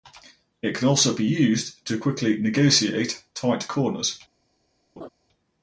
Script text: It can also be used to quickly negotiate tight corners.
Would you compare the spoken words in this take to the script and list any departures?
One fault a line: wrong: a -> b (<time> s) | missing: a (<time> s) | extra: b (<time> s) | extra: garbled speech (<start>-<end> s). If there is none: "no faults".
no faults